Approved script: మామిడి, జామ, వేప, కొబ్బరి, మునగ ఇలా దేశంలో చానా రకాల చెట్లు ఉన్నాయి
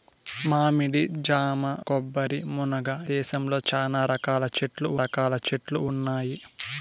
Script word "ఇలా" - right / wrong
wrong